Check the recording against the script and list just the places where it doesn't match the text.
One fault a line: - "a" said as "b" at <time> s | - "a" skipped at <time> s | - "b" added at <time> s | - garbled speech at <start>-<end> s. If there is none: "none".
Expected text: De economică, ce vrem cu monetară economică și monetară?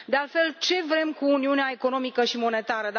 - "economică" said as "altfel" at 0.1 s
- "monetară" said as "uniunea" at 1.2 s